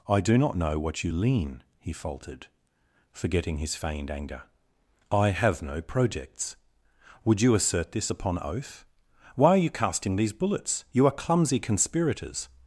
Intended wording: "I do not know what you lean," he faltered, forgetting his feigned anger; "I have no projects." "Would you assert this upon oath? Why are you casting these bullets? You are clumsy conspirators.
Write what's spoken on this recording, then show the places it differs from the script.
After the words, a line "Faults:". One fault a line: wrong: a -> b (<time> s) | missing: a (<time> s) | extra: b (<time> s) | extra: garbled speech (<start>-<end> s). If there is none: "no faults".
"I do not know what you lean," he faltered, forgetting his feigned anger; "I have no projects." "Would you assert this upon oath? Why are you casting these bullets? You are clumsy conspirators.
Faults:
no faults